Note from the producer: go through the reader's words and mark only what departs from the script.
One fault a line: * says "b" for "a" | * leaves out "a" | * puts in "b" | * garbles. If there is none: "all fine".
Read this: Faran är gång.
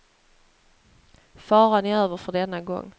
* puts in "över för denna"